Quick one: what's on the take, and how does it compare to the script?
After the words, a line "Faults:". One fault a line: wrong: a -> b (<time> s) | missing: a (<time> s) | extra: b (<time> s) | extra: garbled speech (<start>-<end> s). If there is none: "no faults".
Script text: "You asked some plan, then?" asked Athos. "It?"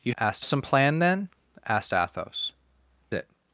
"You asked some plan, then?" asked Athos. "It?"
Faults:
no faults